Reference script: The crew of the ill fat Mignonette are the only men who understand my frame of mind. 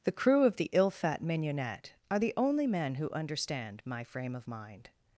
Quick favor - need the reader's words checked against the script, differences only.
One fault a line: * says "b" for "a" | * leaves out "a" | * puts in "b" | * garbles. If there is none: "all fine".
all fine